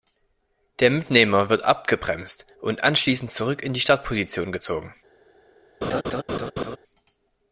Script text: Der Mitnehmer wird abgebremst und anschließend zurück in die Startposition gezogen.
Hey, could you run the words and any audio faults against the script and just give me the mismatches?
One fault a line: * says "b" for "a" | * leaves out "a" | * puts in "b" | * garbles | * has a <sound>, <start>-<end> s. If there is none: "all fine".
* has a laugh, 5.8-6.8 s